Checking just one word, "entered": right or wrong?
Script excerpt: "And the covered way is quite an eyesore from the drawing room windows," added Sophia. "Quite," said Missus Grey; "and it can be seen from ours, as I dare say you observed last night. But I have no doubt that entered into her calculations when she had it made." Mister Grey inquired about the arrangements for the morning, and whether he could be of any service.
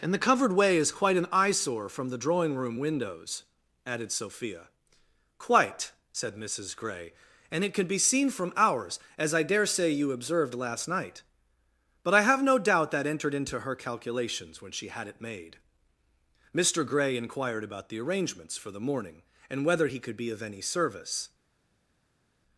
right